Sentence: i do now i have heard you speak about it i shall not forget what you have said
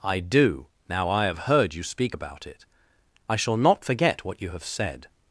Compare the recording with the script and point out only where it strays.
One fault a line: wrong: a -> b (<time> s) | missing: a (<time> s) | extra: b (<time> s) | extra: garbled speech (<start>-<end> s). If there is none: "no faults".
no faults